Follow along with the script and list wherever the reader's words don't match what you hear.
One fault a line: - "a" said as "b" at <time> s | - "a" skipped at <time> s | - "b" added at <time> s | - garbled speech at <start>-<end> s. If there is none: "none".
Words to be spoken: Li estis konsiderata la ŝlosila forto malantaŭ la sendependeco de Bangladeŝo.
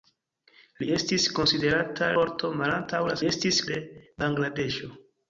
- "la ŝlosila" skipped at 2.1 s
- "sendependeco" said as "estis" at 3.3 s